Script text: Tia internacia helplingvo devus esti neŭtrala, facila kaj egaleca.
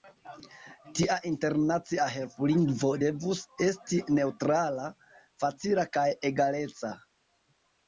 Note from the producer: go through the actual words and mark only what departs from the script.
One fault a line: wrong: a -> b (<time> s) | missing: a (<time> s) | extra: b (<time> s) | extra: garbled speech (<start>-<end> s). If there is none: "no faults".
no faults